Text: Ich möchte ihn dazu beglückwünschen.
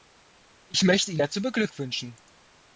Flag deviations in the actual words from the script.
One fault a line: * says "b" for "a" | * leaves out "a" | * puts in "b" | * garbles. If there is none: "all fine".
all fine